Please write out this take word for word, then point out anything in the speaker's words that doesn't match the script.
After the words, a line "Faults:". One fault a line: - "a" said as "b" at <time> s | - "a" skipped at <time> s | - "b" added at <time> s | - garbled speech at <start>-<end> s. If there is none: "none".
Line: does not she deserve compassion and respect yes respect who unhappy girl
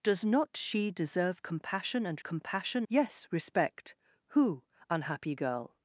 does not she deserve compassion and compassion yes respect who unhappy girl
Faults:
- "respect" said as "compassion" at 2.2 s